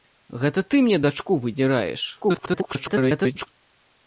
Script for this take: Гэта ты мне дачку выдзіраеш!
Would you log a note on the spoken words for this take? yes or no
yes